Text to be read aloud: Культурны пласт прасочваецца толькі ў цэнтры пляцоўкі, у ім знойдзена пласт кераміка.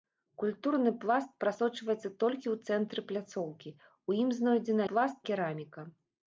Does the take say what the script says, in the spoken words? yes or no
yes